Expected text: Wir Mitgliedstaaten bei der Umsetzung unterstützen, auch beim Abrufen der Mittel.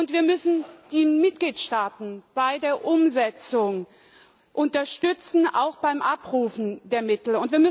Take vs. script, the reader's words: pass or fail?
fail